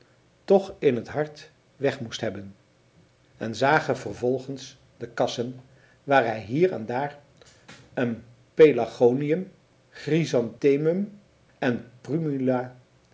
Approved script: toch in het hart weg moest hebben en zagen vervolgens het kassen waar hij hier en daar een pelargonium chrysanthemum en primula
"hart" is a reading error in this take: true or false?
false